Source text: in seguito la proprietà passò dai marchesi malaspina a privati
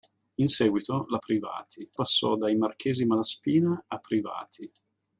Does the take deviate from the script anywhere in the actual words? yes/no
yes